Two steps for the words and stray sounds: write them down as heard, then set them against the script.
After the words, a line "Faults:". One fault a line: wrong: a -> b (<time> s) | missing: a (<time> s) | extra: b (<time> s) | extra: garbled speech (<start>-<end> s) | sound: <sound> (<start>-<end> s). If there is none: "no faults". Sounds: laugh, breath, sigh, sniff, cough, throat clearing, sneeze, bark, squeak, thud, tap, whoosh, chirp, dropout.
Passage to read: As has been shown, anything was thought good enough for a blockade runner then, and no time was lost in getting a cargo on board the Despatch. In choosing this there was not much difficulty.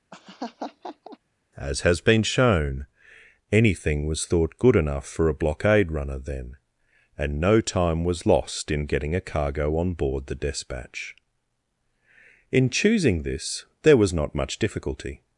As has been shown, anything was thought good enough for a blockade runner then, and no time was lost in getting a cargo on board the Despatch. In choosing this there was not much difficulty.
Faults:
sound: laugh (0.1-1.2 s)